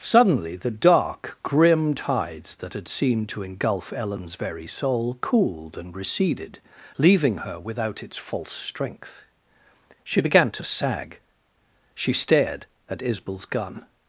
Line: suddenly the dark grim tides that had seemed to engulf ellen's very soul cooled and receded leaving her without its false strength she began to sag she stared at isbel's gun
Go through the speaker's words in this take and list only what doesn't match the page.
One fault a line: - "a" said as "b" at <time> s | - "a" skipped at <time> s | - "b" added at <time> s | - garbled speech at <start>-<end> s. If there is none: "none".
none